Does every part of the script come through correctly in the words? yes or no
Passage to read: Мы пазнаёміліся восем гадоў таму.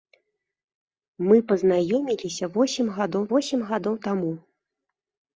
no